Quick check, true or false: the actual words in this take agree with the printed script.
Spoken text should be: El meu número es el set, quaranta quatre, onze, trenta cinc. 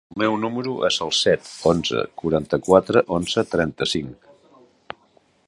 false